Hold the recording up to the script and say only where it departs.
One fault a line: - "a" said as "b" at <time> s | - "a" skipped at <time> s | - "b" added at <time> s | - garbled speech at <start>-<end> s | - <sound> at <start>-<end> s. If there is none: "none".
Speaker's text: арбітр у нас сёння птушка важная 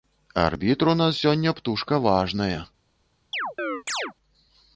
- chirp at 3.3-4.1 s